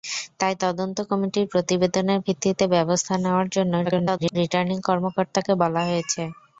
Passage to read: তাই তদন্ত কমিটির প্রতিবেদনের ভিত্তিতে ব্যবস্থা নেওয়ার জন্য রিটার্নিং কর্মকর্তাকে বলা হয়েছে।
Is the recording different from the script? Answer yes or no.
yes